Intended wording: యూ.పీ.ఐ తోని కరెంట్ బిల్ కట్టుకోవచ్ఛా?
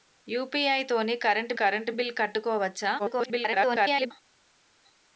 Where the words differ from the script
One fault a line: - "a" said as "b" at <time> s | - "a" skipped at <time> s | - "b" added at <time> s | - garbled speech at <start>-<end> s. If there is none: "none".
- "కరెంట్" added at 1.5 s
- garbled speech at 3.0-4.1 s